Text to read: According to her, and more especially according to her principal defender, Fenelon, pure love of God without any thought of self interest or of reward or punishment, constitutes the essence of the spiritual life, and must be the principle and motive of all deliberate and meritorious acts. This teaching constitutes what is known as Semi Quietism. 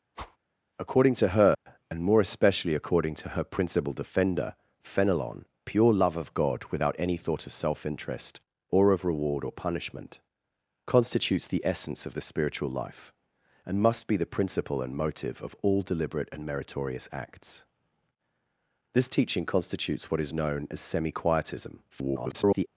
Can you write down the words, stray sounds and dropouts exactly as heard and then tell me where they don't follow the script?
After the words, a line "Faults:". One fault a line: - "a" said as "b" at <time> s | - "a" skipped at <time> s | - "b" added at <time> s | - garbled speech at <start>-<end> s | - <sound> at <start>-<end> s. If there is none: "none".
According to her, and more especially according to her principal defender, Fenelon, pure love of God without any thought of self interest or of reward or punishment, constitutes the essence of the spiritual life, and must be the principle and motive of all deliberate and meritorious acts. This teaching constitutes what is known as Semi Quietism. [garbled]
Faults:
- whoosh at 0.1-0.4 s
- dropout at 1.5-1.7 s
- garbled speech at 21.9-22.7 s